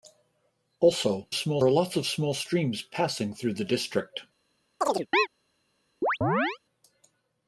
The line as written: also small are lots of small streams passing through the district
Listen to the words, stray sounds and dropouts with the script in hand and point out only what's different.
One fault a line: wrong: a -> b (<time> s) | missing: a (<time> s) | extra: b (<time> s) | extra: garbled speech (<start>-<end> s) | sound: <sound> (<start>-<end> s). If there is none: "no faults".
sound: chirp (4.8-5.3 s)
sound: chirp (6.0-6.6 s)